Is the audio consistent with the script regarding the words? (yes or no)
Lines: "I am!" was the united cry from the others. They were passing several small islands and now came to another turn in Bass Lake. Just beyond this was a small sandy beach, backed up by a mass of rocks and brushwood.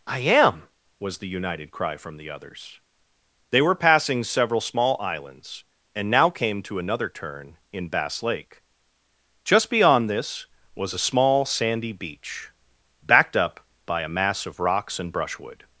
yes